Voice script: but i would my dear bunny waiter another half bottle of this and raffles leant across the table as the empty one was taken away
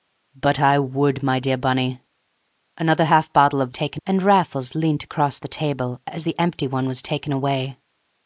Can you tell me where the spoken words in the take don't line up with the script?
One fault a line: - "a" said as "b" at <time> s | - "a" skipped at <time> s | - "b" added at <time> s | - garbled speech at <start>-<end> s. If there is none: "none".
- "waiter" skipped at 2.0 s
- "this" said as "taken" at 3.7 s